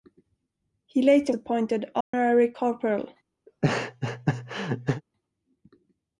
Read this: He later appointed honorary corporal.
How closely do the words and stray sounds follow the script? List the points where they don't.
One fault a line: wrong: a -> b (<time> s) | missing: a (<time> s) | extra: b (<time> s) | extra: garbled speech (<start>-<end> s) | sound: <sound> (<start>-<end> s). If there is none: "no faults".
sound: dropout (2.0-2.1 s)
sound: laugh (3.5-5.0 s)